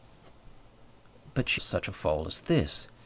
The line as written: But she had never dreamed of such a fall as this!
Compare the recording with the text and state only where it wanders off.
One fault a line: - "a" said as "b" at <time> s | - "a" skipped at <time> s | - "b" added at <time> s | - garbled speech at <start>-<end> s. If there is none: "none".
- "had never dreamed" skipped at 1.6 s